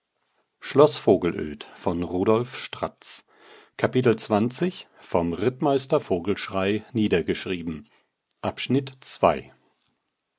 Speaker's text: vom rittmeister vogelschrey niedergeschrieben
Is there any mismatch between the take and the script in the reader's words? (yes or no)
no